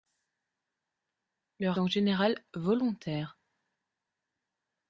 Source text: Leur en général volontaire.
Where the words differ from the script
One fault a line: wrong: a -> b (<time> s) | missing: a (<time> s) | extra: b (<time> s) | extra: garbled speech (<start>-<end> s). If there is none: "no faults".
no faults